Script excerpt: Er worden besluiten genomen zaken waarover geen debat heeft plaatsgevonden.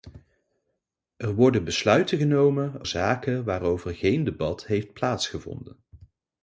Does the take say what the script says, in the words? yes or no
yes